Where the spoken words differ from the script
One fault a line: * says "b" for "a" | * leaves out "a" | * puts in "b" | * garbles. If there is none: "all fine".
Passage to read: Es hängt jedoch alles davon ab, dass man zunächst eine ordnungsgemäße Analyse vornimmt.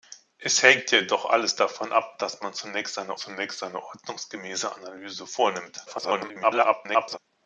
* puts in "zunächst eine"
* garbles